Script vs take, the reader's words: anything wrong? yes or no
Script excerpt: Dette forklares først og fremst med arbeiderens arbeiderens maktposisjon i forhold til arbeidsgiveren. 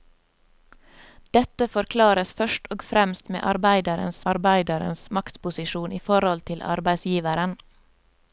no